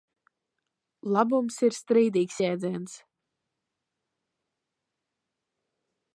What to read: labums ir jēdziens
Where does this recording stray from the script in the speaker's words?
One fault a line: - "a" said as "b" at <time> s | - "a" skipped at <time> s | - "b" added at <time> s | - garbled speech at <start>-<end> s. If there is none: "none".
- "strīdīgs" added at 1.8 s